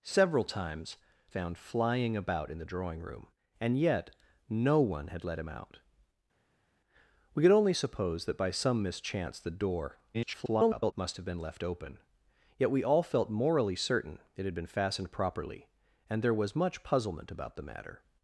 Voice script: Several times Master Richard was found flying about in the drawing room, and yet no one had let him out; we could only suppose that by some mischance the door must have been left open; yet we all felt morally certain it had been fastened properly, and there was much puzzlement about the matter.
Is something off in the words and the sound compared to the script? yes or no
yes